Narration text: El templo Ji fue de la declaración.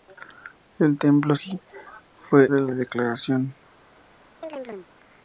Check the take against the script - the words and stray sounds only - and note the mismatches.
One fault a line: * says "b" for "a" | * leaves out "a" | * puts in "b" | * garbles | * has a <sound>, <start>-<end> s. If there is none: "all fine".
* has a chirp, 4.4-4.9 s